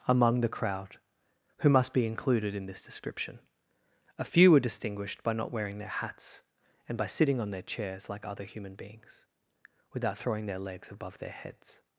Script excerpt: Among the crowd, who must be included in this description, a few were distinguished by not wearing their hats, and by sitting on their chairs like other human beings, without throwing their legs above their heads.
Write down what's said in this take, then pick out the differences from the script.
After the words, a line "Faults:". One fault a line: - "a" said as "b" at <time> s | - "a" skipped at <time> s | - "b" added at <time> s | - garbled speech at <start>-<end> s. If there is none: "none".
Among the crowd, who must be included in this description, a few were distinguished by not wearing their hats, and by sitting on their chairs like other human beings, without throwing their legs above their heads.
Faults:
none